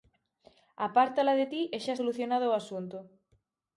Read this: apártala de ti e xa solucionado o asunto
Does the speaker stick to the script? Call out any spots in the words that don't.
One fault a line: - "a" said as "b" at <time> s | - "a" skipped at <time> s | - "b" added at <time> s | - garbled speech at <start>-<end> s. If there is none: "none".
none